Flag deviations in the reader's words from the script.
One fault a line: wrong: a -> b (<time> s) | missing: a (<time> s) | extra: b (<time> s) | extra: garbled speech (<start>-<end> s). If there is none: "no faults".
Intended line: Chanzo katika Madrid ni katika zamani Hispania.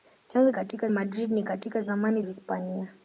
no faults